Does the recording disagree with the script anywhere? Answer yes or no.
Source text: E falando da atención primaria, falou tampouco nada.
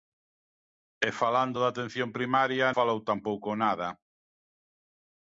no